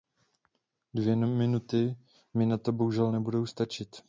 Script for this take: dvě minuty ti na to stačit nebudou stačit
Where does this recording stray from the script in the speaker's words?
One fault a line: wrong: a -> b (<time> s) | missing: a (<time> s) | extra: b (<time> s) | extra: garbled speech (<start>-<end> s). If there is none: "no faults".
wrong: ti -> mi (2.3 s)
wrong: stačit -> bohužel (2.7 s)